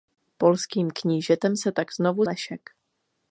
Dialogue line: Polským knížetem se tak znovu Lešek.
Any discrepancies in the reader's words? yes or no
no